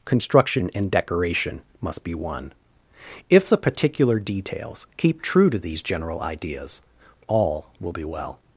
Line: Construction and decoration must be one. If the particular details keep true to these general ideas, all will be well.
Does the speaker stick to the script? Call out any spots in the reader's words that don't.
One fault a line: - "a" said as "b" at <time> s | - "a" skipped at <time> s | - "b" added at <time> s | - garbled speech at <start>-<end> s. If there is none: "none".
none